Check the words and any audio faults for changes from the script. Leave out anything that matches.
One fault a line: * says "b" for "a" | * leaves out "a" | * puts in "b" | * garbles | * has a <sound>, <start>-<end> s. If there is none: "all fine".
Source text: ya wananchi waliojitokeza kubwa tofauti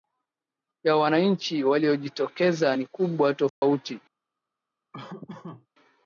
* puts in "ni"
* has a dropout, 3.5-3.6 s
* has a laugh, 4.9-5.7 s